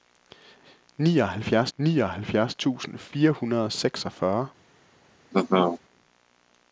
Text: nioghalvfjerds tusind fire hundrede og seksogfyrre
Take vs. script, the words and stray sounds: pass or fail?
fail